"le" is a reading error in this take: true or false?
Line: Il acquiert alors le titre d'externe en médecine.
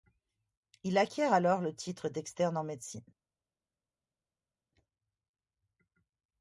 false